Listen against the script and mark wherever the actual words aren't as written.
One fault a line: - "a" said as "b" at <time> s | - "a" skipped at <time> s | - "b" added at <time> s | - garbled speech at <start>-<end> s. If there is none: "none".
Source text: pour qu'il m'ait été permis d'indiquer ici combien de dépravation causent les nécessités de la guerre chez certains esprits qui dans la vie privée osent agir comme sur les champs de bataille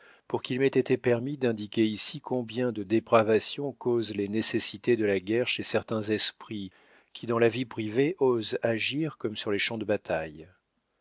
none